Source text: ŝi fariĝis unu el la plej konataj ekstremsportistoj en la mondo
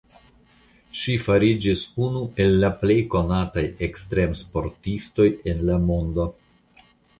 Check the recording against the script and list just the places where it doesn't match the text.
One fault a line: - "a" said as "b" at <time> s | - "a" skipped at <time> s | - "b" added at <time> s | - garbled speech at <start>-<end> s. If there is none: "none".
none